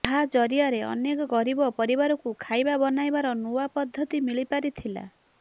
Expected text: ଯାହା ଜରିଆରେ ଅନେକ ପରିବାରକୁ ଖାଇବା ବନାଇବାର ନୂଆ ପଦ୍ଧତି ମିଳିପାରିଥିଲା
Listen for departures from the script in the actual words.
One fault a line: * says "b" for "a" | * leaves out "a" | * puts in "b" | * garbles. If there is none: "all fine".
* puts in "ଗରିବ"